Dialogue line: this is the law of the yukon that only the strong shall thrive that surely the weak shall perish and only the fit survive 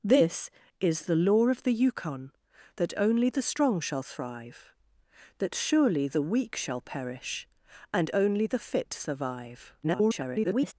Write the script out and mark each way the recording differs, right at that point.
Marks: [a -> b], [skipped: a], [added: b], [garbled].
this is the law of the yukon that only the strong shall thrive that surely the weak shall perish and only the fit survive [garbled]